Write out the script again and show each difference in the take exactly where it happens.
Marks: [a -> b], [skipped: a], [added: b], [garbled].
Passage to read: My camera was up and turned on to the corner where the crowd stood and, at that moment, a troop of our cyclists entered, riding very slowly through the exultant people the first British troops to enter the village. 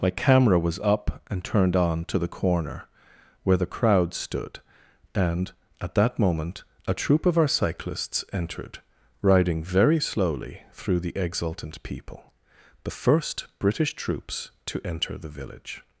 My camera was up and turned on to the corner where the crowd stood and, at that moment, a troop of our cyclists entered, riding very slowly through the exultant people the first British troops to enter the village.